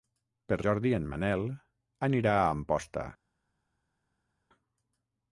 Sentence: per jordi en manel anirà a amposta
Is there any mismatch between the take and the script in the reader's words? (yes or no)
no